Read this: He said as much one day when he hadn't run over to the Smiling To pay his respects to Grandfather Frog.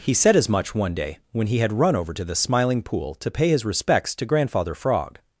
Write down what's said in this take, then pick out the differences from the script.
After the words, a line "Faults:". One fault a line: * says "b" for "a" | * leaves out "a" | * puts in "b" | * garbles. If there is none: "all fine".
He said as much one day when he had run over to the Smiling Pool to pay his respects to Grandfather Frog.
Faults:
* says "had" for "hadn't"
* puts in "Pool"